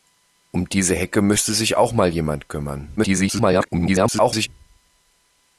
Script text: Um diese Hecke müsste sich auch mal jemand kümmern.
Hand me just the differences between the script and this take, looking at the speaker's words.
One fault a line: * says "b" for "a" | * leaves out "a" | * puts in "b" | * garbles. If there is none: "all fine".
* garbles